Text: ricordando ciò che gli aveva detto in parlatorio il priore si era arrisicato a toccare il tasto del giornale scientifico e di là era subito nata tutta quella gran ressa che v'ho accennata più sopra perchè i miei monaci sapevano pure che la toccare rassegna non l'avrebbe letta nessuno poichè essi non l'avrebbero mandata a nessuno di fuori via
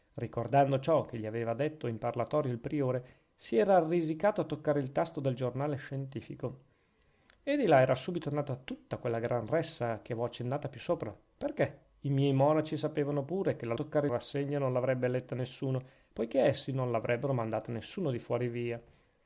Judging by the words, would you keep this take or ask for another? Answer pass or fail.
pass